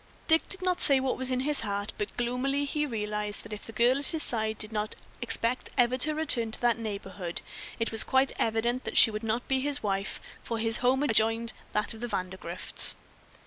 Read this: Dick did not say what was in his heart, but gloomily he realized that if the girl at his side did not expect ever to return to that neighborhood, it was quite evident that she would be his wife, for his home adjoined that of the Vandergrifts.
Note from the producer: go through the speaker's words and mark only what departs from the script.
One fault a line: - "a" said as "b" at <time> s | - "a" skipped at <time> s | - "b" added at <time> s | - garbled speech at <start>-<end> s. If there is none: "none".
- "not" added at 9.2 s